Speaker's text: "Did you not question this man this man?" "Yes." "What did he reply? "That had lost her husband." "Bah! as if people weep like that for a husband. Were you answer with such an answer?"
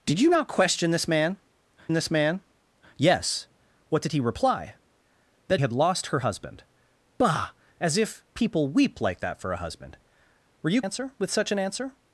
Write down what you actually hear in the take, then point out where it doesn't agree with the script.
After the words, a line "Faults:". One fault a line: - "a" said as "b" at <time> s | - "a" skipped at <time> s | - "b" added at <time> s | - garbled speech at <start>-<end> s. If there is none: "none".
"Did you not question this man this man?" "Yes." "What did he reply? "That had lost her husband." "Bah! as if people weep like that for a husband. Were you answer with such an answer?"
Faults:
none